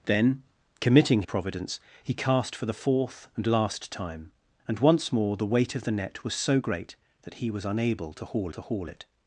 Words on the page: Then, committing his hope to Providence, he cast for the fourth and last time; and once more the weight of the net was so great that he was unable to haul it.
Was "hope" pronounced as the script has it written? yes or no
no